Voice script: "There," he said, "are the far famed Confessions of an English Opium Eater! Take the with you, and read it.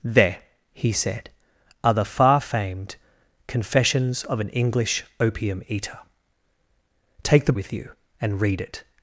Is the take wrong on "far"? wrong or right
right